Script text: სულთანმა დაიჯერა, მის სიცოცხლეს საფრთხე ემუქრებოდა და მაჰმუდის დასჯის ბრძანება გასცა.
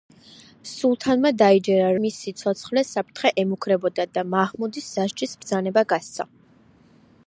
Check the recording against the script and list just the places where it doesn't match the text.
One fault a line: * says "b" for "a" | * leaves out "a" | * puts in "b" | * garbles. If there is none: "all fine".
all fine